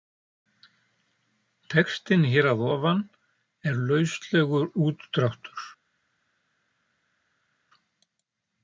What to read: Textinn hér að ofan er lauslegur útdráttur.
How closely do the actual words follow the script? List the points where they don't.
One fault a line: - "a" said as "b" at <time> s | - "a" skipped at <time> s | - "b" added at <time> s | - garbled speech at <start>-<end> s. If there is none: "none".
none